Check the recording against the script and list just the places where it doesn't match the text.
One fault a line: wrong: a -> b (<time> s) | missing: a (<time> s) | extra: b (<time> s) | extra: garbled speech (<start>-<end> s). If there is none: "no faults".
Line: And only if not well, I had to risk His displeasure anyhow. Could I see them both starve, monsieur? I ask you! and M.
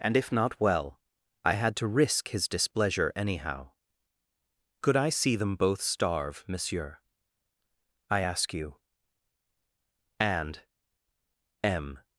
missing: only (0.2 s)